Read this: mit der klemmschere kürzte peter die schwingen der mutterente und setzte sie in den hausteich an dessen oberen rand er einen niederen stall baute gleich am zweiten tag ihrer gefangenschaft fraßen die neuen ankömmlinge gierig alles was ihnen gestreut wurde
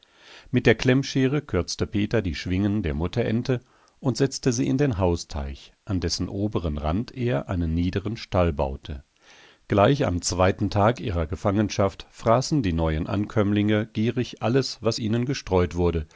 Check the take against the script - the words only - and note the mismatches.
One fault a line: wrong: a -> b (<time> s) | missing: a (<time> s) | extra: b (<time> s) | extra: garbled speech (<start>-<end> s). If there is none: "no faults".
no faults